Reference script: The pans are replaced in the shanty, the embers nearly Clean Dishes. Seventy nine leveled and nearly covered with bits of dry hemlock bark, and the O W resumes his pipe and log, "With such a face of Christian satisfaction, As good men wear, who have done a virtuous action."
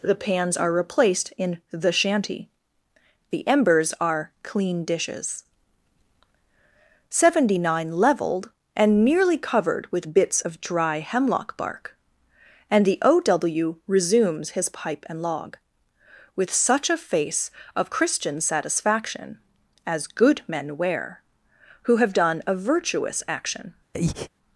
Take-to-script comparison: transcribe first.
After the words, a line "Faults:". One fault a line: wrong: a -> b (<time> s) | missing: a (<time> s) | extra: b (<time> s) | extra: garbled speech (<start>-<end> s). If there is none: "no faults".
The pans are replaced in the shanty, the embers are Clean Dishes. Seventy nine leveled and nearly covered with bits of dry hemlock bark, and the O W resumes his pipe and log, "With such a face of Christian satisfaction, As good men wear, who have done a virtuous action."
Faults:
wrong: nearly -> are (4.0 s)